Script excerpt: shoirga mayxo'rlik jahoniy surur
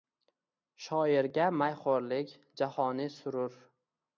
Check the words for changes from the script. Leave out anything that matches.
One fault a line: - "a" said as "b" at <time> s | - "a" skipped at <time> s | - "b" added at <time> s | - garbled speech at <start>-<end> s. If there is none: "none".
none